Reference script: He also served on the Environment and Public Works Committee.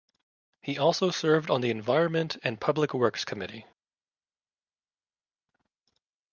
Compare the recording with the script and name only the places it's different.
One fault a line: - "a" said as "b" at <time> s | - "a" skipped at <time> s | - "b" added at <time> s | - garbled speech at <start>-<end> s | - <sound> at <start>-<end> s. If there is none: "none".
none